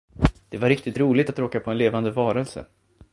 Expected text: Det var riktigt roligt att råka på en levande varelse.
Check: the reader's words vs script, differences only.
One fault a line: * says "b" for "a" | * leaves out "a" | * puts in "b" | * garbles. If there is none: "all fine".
all fine